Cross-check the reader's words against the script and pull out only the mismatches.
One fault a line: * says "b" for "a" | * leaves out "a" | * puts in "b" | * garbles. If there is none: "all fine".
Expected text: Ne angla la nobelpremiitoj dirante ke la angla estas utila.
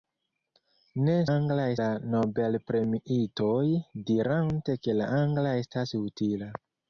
all fine